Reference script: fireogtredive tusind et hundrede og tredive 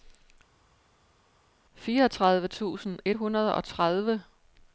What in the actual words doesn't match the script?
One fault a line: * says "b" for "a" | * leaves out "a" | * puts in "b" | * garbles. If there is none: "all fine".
all fine